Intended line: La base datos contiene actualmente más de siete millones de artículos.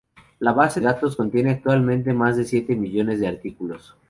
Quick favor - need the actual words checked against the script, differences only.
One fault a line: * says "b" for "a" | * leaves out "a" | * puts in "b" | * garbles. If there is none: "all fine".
all fine